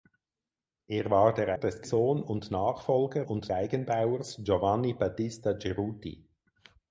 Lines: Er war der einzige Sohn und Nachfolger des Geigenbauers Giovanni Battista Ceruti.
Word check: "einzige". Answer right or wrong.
wrong